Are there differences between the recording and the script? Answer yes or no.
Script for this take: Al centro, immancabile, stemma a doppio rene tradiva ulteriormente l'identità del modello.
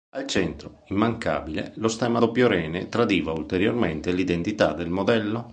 yes